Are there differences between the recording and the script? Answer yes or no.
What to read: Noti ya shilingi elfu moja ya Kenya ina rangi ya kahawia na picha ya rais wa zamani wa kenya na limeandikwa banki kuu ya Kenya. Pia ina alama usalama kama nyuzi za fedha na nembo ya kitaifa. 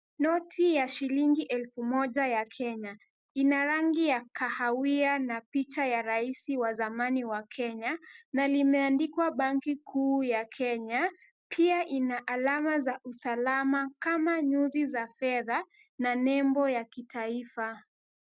yes